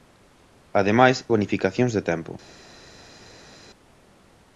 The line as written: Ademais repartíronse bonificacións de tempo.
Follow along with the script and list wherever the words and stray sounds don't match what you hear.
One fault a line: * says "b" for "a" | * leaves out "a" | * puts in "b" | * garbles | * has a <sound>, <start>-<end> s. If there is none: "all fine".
* leaves out "repartíronse"